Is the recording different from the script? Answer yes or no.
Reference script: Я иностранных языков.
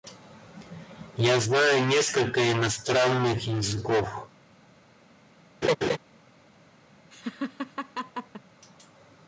yes